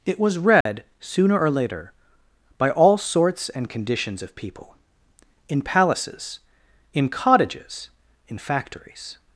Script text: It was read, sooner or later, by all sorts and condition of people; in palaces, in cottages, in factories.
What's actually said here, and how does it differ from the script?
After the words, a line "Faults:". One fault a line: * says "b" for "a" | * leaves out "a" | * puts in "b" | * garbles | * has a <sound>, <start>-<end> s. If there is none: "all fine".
It was read, sooner or later, by all sorts and conditions of people; in palaces, in cottages, in factories.
Faults:
* has a dropout, 0.6-0.7 s
* says "conditions" for "condition"